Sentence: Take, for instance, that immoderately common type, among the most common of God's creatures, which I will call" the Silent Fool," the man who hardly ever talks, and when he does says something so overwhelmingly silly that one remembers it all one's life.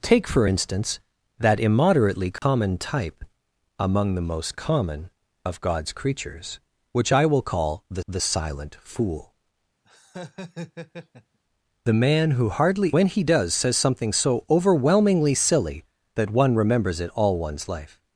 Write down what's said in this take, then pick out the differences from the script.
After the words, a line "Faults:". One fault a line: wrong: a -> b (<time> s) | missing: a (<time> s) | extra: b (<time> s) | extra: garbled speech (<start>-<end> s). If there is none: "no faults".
Take, for instance, that immoderately common type, among the most common of God's creatures, which I will call" the the Silent Fool," the man who hardly when he does says something so overwhelmingly silly that one remembers it all one's life.
Faults:
extra: the (8.1 s)
missing: ever talks and (12.9 s)